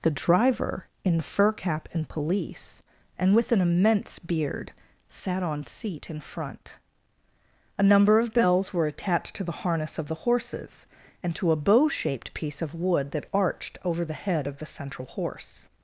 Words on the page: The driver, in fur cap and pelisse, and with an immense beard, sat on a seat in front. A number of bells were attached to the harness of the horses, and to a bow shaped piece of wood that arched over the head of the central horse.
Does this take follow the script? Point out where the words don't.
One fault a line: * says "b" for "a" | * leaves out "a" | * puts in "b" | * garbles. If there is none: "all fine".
* leaves out "a"